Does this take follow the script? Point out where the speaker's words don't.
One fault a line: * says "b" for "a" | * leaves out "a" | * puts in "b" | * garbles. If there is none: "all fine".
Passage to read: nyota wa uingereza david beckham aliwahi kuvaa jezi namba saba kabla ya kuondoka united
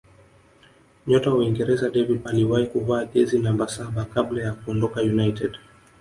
* leaves out "beckham"